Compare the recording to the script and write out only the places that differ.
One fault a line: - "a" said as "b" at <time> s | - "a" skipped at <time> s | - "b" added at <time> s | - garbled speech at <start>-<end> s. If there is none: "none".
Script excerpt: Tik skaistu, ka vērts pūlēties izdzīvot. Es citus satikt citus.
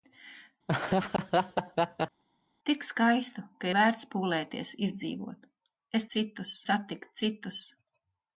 none